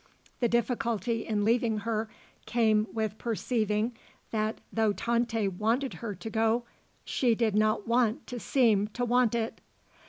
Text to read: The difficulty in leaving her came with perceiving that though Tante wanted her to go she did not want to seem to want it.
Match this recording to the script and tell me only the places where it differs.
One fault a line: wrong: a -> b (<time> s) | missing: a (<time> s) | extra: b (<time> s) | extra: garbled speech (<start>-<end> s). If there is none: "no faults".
no faults